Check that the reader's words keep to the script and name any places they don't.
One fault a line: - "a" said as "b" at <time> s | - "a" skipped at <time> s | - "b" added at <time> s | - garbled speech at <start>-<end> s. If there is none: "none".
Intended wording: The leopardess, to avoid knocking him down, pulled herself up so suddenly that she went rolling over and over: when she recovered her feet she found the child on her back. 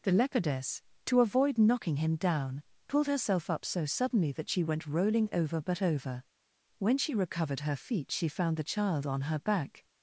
- "and" said as "but" at 5.6 s